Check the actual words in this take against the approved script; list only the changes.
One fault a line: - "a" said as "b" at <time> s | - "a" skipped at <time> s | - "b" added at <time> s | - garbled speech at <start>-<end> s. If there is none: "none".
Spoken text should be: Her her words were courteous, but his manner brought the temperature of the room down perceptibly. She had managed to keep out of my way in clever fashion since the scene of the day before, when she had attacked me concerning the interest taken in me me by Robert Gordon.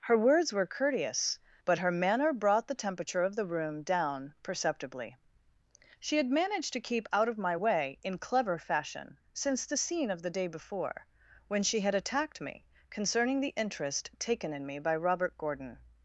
- "her" skipped at 0.2 s
- "his" said as "her" at 1.8 s
- "me" skipped at 14.8 s